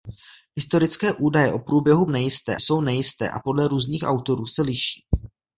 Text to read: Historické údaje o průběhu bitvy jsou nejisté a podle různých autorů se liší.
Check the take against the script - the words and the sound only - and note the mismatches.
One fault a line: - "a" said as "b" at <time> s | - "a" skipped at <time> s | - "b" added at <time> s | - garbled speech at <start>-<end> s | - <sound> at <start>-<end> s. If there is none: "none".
- "bitvy" said as "nejisté" at 2.1 s